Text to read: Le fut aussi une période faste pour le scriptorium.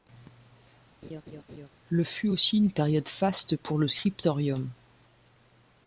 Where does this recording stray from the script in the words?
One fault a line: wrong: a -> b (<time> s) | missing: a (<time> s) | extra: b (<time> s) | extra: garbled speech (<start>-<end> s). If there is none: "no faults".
no faults